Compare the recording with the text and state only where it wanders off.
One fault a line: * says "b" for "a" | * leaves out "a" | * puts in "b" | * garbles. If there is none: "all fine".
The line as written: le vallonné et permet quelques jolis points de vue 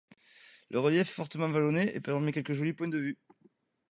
* puts in "relief est fortement"